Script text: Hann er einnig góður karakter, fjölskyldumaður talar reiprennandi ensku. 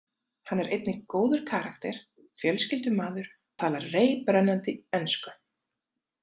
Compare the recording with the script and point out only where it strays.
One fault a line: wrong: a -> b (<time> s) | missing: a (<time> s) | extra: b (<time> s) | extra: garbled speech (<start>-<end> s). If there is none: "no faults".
no faults